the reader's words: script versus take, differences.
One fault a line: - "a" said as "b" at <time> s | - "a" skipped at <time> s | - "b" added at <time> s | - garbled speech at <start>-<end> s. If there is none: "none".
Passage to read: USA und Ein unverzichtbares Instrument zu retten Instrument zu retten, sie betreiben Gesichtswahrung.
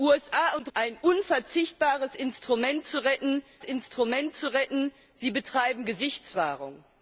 none